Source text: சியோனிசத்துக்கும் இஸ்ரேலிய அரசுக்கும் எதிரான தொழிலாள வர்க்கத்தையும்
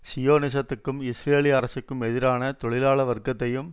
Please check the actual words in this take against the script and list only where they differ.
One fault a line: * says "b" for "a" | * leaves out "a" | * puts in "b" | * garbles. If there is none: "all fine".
all fine